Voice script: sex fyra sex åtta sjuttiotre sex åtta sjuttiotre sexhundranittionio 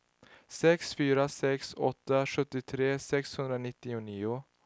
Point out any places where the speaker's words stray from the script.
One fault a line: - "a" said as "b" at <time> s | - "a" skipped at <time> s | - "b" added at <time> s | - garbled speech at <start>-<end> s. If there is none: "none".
- "sex åtta sjuttiotre" skipped at 3.0 s